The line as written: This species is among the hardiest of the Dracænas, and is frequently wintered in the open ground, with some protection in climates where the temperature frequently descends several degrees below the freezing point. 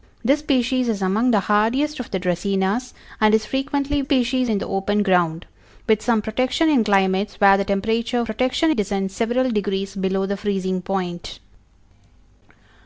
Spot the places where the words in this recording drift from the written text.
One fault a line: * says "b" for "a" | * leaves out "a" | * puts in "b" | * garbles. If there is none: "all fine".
* says "species" for "wintered"
* says "protection" for "frequently"